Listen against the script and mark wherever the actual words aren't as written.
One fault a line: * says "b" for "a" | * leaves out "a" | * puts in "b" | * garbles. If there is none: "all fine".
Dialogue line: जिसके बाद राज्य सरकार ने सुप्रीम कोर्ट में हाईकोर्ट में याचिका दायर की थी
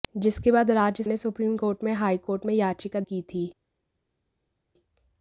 * leaves out "सरकार"
* leaves out "दायर"